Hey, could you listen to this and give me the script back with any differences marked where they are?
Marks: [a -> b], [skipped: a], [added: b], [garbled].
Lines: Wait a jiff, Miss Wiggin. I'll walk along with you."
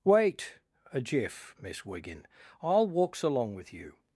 Wait a jiff, Miss Wiggin. I'll [walk -> walks] along with you."